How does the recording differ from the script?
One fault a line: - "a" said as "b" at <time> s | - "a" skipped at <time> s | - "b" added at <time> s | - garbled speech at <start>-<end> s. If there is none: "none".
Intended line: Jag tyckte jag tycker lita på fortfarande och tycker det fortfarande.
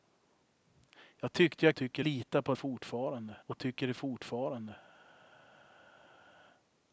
none